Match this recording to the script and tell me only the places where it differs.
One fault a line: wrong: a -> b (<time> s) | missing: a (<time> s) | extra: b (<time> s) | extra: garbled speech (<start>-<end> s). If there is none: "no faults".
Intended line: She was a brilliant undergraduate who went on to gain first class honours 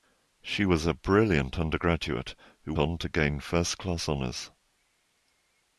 missing: went (2.7 s)